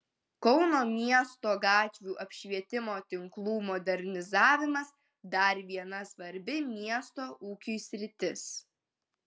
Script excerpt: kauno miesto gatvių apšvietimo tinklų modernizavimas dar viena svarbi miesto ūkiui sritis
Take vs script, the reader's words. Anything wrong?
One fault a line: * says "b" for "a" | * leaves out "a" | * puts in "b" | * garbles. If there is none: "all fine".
all fine